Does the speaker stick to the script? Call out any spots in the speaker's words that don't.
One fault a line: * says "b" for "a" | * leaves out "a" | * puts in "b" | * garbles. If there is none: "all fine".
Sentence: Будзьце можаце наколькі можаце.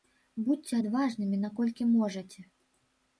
* says "адважнымі" for "можаце"